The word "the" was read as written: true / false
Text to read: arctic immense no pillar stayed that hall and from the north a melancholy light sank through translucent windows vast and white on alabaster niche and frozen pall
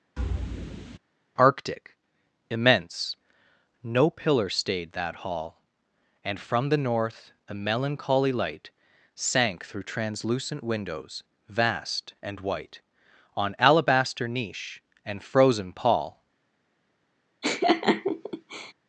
true